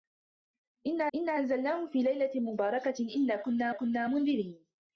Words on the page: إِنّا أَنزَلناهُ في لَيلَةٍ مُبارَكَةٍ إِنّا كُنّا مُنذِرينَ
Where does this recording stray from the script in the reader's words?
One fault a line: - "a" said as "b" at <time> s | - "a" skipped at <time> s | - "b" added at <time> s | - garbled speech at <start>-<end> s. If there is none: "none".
- "إِنّا" added at 1.2 s
- "كُنّا" added at 3.7 s